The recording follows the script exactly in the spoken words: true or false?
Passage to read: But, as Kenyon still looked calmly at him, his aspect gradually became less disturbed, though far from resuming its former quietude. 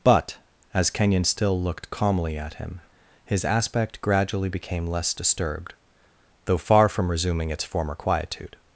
true